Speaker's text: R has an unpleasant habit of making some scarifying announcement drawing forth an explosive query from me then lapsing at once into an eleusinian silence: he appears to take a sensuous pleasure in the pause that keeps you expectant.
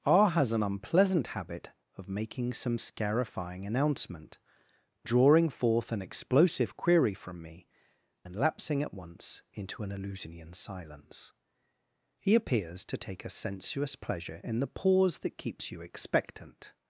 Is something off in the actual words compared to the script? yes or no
no